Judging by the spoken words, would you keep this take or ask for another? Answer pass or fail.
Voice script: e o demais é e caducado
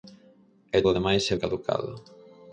pass